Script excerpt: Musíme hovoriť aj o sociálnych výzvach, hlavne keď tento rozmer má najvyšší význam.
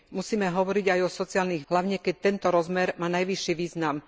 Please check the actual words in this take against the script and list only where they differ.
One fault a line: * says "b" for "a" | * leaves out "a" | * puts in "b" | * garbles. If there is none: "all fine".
* leaves out "výzvach"